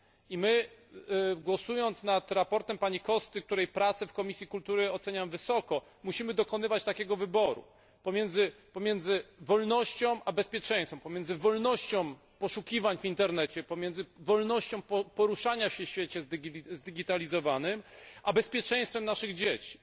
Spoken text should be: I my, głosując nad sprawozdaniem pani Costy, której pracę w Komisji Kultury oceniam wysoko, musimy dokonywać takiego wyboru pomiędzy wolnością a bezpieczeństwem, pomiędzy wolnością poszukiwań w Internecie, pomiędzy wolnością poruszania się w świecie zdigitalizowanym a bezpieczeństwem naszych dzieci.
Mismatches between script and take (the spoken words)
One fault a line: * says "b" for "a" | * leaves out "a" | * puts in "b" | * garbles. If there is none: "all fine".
all fine